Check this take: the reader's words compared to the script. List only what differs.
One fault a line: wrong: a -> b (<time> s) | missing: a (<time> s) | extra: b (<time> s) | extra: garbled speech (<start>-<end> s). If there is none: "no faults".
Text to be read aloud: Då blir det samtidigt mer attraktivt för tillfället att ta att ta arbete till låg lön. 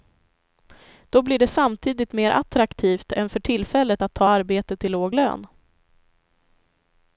extra: än (3.1 s)
missing: att ta (4.3 s)